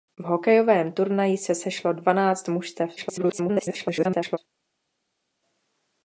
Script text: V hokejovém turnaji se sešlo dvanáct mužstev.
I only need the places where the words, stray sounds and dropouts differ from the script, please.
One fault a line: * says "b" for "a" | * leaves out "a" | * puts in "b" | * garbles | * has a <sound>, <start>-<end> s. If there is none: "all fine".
* garbles